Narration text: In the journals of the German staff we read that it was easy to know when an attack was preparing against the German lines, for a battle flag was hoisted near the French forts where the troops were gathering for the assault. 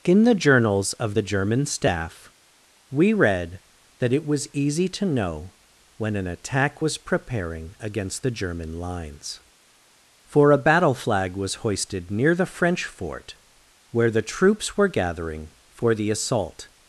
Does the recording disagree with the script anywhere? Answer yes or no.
yes